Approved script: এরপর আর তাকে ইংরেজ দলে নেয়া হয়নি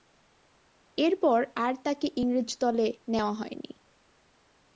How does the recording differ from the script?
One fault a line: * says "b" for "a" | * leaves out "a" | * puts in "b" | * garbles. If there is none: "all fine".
all fine